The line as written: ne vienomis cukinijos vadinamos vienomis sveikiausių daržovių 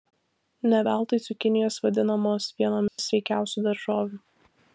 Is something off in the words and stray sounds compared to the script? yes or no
yes